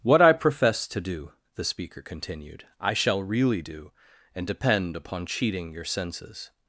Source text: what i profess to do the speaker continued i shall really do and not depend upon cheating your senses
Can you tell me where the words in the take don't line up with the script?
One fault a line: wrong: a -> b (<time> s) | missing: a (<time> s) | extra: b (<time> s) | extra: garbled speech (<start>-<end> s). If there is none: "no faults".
missing: not (4.5 s)